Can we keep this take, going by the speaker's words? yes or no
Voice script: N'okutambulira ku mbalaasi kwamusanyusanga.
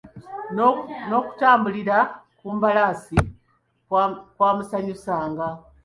yes